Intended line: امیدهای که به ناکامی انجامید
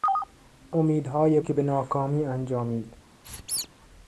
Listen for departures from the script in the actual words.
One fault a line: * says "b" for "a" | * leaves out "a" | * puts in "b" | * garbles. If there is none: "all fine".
all fine